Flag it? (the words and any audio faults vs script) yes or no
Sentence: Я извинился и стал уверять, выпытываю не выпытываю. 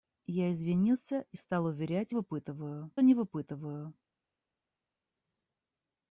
no